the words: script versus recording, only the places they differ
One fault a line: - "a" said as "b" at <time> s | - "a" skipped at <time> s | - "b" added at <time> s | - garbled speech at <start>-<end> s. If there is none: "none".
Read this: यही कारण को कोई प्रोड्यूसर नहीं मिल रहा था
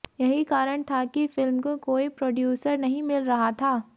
- "था कि फिल्म" added at 0.8 s